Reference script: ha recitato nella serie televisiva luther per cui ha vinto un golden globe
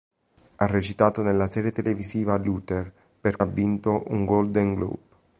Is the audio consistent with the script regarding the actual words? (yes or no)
no